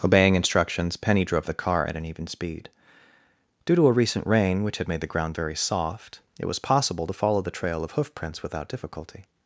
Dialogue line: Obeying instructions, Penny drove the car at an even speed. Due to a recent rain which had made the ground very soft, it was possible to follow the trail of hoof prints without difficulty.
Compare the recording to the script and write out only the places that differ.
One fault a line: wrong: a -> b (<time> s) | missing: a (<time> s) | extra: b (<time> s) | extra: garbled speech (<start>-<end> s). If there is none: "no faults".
no faults